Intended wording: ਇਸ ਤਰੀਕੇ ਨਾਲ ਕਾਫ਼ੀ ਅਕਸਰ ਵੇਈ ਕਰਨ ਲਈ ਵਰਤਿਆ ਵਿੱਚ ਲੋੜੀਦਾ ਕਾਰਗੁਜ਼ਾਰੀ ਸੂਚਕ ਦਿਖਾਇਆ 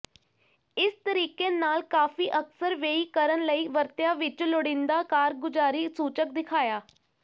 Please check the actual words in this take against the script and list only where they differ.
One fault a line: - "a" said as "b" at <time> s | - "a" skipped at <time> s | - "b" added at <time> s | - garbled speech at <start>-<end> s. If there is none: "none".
none